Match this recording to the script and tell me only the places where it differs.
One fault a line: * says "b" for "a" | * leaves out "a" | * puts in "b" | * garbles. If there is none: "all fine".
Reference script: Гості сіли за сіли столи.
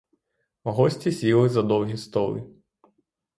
* says "довгі" for "сіли"